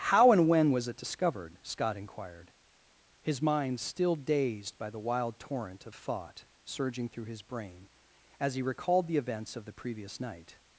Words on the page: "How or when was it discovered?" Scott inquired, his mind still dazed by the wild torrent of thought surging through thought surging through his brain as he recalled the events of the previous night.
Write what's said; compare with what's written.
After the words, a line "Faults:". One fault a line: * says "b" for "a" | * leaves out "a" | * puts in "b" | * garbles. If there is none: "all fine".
"How and when was it discovered?" Scott inquired, his mind still dazed by the wild torrent of thought surging through his brain as he recalled the events of the previous night.
Faults:
* says "and" for "or"
* leaves out "thought surging through"